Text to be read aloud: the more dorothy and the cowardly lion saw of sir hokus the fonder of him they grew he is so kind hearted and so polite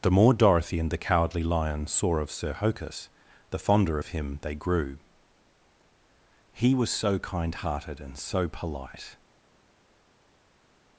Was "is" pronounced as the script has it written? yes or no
no